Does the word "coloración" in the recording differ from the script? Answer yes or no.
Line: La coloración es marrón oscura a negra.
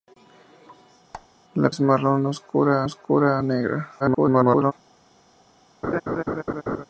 yes